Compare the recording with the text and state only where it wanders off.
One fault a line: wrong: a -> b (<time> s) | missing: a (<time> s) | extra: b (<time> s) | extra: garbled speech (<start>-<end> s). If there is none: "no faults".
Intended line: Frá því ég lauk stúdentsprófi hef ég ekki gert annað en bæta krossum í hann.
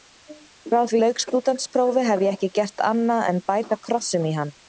missing: ég (1.0 s)